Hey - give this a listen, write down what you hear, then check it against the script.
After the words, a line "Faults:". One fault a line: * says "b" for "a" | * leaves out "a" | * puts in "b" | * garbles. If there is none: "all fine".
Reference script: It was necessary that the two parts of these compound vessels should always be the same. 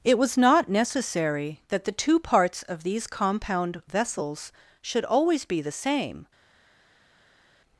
It was not necessary that the two parts of these compound vessels should always be the same.
Faults:
* puts in "not"